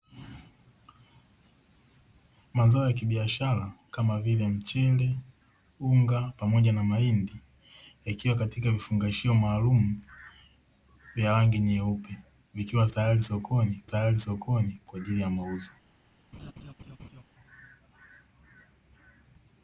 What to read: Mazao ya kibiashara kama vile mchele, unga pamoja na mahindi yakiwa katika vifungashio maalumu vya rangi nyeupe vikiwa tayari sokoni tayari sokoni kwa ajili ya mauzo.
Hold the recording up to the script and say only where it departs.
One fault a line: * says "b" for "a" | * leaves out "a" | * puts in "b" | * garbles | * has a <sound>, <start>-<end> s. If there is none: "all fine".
* has a laugh, 16.3-17.2 s